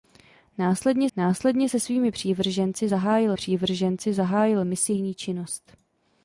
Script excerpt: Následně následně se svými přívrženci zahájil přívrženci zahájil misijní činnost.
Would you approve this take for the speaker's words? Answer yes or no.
yes